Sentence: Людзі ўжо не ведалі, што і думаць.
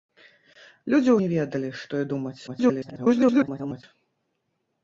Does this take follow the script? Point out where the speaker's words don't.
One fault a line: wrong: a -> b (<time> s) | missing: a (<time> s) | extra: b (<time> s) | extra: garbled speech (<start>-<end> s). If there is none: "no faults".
missing: ўжо (1.1 s)
extra: garbled speech (2.5-3.8 s)